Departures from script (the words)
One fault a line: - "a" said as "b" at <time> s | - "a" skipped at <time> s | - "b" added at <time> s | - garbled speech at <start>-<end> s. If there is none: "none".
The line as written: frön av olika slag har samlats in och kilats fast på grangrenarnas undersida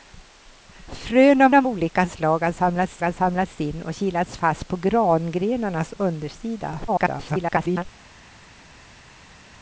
- "av" added at 1.5 s
- "har samlats" added at 3.0 s
- garbled speech at 6.9-7.8 s